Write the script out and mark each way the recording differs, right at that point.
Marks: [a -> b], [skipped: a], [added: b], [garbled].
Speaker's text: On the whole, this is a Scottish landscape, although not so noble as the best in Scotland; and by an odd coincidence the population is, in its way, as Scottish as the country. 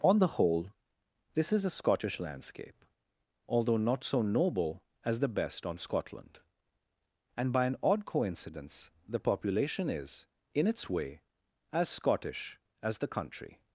On the whole, this is a Scottish landscape, although not so noble as the best [in -> on] Scotland; and by an odd coincidence the population is, in its way, as Scottish as the country.